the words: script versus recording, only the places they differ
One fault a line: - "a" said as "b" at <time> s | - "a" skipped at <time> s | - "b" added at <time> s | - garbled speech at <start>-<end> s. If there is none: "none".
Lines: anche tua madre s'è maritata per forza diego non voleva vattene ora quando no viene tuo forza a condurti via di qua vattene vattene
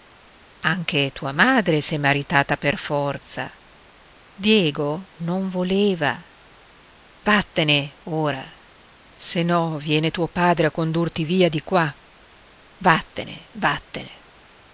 - "quando" said as "se" at 9.1 s
- "forza" said as "padre" at 10.3 s